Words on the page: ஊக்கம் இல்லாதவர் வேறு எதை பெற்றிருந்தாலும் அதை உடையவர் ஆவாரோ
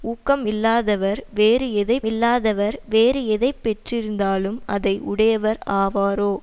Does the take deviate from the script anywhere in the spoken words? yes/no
yes